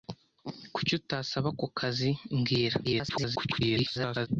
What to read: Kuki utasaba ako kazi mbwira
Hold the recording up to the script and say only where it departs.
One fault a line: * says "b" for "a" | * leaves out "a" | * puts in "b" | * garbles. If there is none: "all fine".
* garbles